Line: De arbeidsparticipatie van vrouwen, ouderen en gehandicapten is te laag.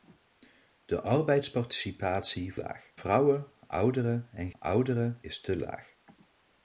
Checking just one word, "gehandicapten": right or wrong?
wrong